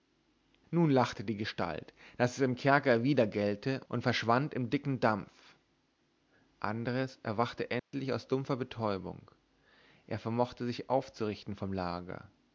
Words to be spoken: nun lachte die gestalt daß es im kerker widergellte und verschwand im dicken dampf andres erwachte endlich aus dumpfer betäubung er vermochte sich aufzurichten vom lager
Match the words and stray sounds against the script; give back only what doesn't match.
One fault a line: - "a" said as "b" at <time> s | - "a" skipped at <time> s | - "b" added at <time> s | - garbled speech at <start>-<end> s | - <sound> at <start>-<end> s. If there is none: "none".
- dropout at 7.8-7.9 s